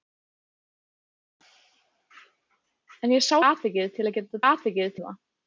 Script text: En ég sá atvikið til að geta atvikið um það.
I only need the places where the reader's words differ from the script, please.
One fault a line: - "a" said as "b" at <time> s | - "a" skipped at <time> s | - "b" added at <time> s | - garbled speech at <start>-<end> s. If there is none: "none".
none